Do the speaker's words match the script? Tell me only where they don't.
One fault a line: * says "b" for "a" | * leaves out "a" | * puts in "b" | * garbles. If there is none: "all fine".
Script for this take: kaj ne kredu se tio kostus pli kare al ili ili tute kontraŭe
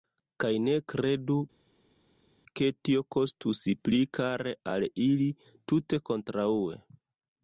* says "ke" for "se"
* leaves out "ili"